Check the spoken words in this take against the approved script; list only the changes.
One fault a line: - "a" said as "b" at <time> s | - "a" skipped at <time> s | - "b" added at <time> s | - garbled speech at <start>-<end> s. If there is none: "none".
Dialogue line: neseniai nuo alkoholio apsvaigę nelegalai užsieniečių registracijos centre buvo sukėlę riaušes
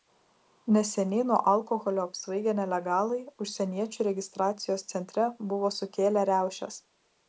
none